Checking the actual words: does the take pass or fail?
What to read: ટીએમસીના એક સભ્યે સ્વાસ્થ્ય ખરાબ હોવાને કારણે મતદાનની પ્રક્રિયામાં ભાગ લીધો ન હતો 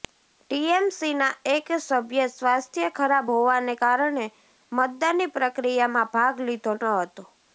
pass